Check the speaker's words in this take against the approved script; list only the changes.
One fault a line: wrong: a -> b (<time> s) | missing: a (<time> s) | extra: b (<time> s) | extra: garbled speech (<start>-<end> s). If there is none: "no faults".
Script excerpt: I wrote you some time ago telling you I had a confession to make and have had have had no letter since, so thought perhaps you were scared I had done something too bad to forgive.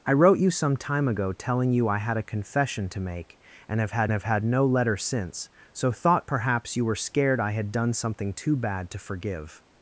no faults